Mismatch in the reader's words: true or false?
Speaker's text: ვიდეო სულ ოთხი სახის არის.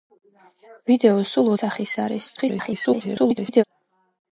true